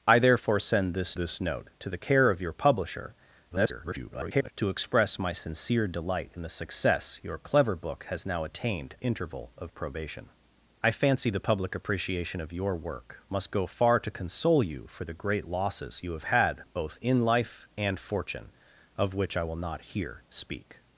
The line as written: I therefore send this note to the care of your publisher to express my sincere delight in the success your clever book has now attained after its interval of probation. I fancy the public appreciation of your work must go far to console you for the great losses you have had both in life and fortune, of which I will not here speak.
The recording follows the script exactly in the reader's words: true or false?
false